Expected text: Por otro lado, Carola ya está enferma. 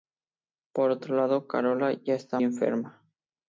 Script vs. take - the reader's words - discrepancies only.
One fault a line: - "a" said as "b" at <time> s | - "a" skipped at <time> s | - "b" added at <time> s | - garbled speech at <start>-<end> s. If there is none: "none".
none